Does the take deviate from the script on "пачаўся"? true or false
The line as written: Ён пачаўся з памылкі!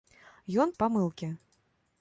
true